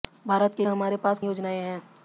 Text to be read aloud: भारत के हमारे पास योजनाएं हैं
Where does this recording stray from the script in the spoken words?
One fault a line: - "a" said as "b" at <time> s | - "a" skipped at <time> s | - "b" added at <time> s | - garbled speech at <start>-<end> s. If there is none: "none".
none